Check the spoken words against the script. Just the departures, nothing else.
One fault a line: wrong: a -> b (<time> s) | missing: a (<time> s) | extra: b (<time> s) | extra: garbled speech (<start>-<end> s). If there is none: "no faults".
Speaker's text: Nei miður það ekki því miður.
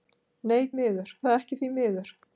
no faults